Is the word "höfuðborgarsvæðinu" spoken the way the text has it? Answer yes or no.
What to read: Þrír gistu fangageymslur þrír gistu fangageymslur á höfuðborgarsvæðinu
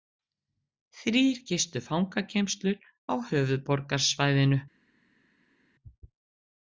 yes